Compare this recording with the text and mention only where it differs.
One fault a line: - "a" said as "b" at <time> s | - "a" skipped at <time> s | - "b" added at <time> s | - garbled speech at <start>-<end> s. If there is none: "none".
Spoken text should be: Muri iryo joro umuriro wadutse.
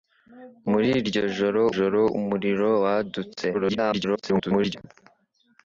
- "joro" added at 1.7 s
- garbled speech at 3.5-4.8 s